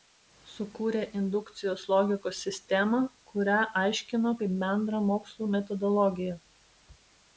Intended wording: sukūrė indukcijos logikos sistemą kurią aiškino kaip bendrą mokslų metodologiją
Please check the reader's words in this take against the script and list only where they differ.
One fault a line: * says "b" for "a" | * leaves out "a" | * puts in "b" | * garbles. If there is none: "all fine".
all fine